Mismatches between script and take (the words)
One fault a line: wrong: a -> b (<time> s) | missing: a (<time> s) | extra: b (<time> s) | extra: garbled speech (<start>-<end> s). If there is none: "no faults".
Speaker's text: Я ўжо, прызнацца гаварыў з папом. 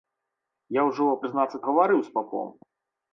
no faults